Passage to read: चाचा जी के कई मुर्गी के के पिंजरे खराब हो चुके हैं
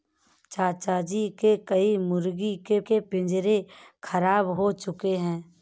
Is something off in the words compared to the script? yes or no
no